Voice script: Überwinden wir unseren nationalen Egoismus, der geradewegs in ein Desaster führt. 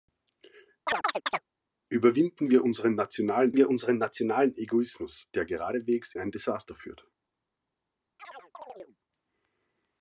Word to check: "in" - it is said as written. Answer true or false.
false